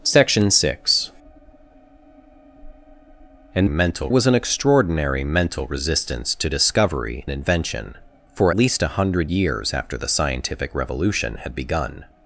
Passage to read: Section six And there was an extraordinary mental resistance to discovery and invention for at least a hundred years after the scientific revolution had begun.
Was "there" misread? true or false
true